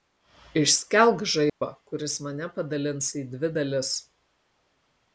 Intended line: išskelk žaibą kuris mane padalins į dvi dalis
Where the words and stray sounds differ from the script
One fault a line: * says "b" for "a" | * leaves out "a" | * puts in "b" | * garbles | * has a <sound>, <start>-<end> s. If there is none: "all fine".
* has a dropout, 1.5-1.6 s